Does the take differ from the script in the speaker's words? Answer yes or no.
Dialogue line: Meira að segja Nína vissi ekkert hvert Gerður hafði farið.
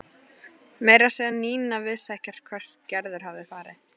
no